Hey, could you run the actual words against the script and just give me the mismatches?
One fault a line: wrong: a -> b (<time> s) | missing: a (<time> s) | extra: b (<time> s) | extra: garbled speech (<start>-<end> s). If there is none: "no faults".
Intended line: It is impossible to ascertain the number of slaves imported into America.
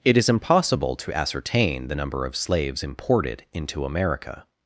no faults